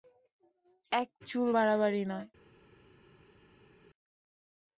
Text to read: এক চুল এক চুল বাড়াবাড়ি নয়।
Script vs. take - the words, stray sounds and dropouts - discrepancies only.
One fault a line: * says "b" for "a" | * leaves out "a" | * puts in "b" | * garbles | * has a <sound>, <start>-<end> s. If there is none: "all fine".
* leaves out "এক চুল"